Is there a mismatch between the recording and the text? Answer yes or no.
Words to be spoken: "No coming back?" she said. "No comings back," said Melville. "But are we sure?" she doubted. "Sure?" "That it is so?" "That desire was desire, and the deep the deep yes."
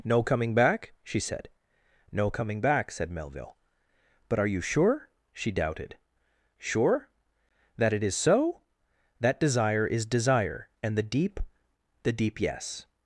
yes